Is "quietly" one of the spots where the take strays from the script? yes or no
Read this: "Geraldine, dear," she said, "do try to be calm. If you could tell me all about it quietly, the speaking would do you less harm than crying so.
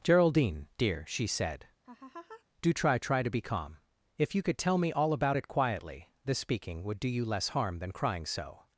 no